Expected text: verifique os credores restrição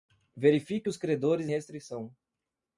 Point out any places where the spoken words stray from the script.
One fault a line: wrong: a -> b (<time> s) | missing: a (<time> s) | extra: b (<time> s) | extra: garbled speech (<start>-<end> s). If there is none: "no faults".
no faults